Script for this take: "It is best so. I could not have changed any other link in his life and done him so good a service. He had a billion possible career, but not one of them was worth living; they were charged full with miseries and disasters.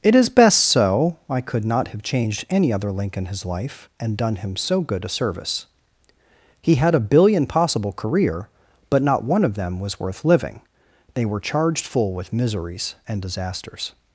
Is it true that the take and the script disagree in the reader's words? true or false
false